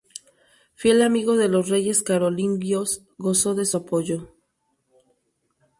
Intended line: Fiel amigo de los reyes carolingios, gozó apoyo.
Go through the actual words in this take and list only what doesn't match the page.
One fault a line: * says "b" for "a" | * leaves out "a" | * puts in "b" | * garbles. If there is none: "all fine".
* puts in "de su"